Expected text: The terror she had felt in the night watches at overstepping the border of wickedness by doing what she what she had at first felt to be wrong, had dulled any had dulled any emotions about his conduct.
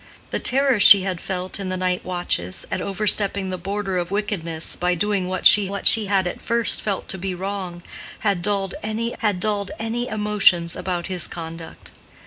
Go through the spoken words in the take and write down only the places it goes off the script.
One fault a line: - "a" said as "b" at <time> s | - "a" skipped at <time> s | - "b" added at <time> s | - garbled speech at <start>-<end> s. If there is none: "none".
none